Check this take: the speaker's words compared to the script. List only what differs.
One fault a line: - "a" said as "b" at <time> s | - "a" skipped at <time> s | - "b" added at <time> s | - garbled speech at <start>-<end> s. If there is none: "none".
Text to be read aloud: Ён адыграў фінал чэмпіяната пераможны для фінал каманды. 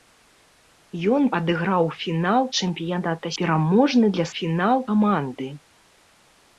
none